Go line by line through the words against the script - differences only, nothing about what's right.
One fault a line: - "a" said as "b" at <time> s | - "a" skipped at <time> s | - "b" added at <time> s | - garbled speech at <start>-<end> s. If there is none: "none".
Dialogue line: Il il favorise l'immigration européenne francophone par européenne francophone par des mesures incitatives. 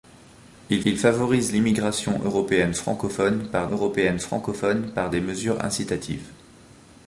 none